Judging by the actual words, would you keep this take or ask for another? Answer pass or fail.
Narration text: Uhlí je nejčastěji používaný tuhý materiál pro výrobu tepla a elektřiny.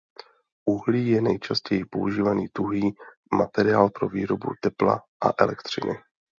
pass